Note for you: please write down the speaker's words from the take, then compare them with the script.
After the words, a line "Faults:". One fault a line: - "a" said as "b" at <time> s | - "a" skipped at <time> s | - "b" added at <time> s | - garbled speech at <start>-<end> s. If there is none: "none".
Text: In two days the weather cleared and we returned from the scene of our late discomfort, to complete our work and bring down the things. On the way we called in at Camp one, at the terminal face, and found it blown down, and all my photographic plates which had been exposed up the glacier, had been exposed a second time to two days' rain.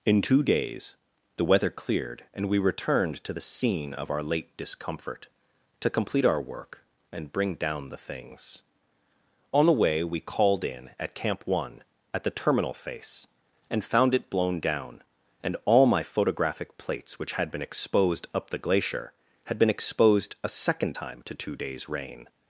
In two days the weather cleared and we returned to the scene of our late discomfort, to complete our work and bring down the things. On the way we called in at Camp one, at the terminal face, and found it blown down, and all my photographic plates which had been exposed up the glacier, had been exposed a second time to two days' rain.
Faults:
- "from" said as "to" at 3.2 s